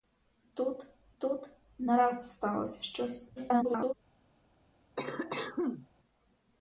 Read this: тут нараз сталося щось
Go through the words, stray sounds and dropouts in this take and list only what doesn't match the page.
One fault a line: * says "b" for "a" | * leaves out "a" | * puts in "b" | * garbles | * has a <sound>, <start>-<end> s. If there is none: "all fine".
* puts in "тут"
* garbles
* has a cough, 5.0-5.9 s